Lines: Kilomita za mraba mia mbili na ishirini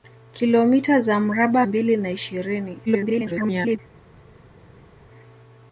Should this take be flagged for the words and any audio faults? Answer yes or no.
yes